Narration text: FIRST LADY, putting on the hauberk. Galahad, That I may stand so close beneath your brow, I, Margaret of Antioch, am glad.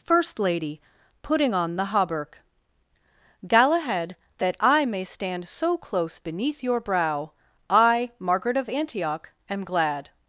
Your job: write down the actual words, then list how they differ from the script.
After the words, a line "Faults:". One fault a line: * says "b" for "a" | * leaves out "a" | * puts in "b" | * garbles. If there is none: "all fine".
FIRST LADY, putting on the hauberk. Galahad, That I may stand so close beneath your brow, I, Margaret of Antioch, am glad.
Faults:
all fine